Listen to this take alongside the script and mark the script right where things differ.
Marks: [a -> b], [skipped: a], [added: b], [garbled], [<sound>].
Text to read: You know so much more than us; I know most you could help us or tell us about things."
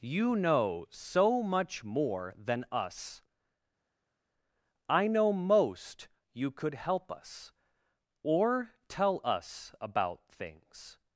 You know so much more than us; I know most you could help us or tell us about things."